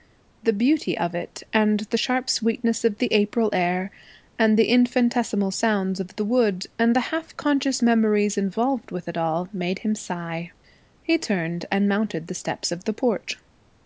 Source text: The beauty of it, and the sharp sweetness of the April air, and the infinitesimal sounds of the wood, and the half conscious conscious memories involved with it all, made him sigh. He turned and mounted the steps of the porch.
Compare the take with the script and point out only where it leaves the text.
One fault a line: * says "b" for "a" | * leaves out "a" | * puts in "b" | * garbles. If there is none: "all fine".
* leaves out "conscious"